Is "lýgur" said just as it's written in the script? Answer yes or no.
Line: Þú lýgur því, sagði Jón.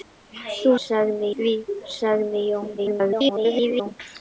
no